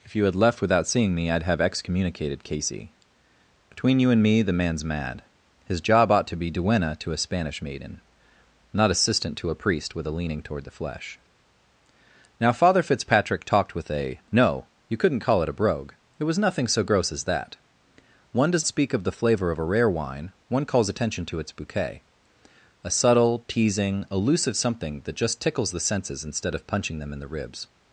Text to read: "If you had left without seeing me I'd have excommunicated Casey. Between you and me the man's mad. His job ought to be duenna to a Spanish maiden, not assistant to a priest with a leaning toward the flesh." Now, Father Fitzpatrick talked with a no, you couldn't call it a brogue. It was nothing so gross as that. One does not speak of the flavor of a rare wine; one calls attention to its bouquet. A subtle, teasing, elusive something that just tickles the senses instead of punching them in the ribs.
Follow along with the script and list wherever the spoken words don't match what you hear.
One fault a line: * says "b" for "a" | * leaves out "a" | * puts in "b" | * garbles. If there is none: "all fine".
* leaves out "not"